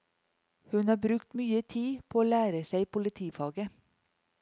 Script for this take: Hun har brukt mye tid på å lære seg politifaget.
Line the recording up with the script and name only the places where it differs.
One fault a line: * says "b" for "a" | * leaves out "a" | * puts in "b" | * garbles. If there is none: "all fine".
all fine